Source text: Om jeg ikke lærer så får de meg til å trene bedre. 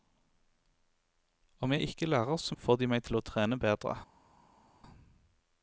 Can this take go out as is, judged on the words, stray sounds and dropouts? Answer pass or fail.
pass